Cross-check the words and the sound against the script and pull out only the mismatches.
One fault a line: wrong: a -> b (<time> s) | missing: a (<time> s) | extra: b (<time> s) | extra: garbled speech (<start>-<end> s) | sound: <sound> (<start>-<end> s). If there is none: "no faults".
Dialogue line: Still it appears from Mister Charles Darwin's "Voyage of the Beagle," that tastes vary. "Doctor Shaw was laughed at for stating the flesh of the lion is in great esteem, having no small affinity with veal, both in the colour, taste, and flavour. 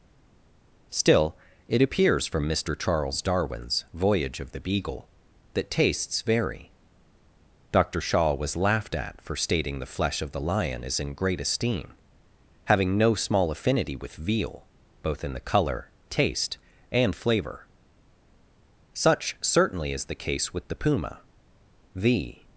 extra: Such certainly is the case with the puma The (18.9 s)